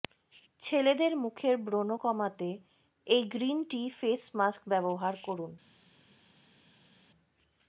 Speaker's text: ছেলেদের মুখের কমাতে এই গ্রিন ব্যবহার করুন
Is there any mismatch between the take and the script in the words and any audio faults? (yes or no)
yes